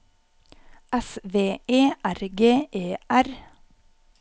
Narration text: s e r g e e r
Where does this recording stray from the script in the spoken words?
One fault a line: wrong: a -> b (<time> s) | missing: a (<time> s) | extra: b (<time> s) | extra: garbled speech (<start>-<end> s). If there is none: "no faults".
extra: v (1.2 s)
missing: e (2.9 s)